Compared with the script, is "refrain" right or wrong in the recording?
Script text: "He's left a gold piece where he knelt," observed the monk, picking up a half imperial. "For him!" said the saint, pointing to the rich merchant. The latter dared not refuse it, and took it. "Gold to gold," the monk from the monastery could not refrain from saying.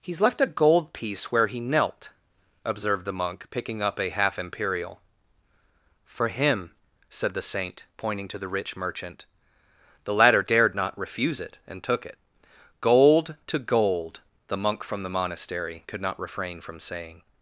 right